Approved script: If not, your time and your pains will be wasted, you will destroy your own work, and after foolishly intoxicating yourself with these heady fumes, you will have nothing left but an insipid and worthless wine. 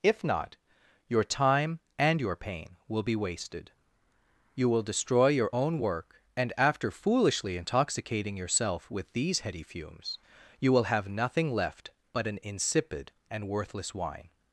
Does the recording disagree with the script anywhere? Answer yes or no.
yes